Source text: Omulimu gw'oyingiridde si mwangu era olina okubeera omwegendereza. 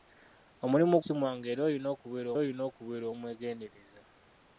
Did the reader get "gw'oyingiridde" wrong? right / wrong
wrong